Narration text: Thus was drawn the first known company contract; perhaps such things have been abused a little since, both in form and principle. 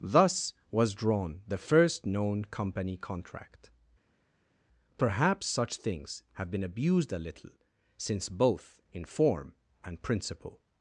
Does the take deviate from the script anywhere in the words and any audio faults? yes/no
no